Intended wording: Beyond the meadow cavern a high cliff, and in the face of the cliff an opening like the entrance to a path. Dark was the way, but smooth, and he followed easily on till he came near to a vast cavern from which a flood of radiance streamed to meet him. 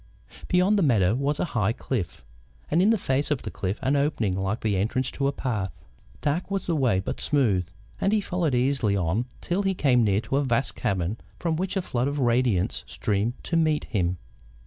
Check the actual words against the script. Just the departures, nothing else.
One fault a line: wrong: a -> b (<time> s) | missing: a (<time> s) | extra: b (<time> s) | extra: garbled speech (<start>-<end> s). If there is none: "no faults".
wrong: cavern -> was (1.1 s)